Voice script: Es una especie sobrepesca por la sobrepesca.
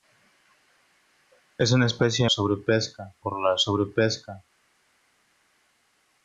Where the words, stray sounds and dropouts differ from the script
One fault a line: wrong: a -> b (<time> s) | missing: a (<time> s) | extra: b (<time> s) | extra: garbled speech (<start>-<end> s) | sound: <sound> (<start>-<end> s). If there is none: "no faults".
no faults